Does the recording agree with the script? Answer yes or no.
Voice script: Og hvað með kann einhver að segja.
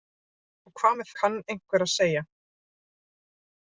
yes